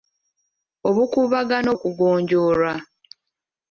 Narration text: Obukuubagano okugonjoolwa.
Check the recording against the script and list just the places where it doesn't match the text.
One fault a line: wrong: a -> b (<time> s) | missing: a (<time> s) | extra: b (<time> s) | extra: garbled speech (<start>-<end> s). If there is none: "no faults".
no faults